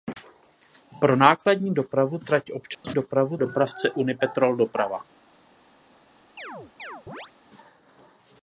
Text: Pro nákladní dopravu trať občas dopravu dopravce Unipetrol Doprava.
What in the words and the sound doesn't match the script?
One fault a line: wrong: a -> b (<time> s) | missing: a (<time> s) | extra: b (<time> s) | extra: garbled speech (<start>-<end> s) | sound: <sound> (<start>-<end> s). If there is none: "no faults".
sound: dropout (2.7-2.8 s)
sound: chirp (6.4-7.3 s)